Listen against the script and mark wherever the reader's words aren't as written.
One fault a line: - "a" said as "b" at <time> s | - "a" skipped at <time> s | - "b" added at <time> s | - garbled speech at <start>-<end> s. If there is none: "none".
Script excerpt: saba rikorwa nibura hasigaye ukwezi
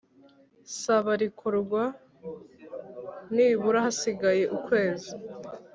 none